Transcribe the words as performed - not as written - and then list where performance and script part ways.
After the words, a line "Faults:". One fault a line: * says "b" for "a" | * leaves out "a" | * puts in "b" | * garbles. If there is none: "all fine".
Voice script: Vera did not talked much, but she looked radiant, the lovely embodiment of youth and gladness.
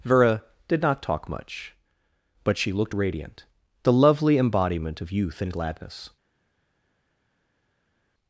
Vera did not talk much, but she looked radiant, the lovely embodiment of youth and gladness.
Faults:
* says "talk" for "talked"